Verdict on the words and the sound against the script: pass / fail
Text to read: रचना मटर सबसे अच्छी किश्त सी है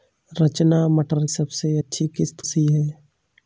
pass